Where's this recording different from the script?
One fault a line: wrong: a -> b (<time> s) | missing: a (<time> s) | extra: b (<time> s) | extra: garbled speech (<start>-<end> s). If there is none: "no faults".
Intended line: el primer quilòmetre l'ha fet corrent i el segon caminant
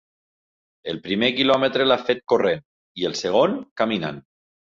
no faults